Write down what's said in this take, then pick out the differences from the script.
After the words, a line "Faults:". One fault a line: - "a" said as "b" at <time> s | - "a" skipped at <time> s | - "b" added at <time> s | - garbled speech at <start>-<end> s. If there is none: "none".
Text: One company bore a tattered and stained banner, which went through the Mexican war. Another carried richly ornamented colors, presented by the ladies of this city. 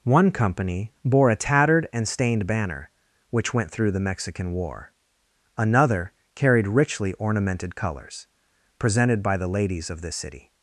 One company bore a tattered and stained banner, which went through the Mexican war. Another carried richly ornamented colors, presented by the ladies of this city.
Faults:
none